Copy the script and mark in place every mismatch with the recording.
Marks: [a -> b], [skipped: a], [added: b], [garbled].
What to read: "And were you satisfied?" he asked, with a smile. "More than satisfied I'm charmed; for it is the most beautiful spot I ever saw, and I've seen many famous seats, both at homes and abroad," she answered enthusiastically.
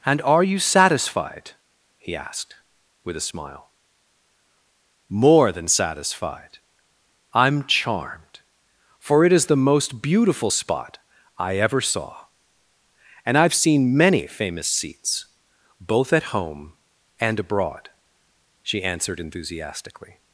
"And [were -> are] you satisfied?" he asked, with a smile. "More than satisfied I'm charmed; for it is the most beautiful spot I ever saw, and I've seen many famous seats, both at [homes -> home] and abroad," she answered enthusiastically.